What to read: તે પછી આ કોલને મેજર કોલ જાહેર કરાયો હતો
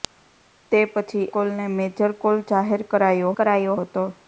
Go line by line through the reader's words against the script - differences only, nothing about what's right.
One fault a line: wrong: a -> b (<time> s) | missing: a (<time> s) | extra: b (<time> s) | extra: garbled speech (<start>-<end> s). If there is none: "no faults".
missing: આ (1.3 s)
extra: કરાયો (3.4 s)